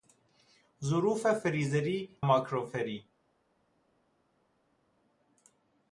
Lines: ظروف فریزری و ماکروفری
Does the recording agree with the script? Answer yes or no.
no